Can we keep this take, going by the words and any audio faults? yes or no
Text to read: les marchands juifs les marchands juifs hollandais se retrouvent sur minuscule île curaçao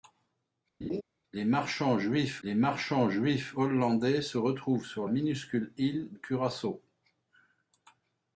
no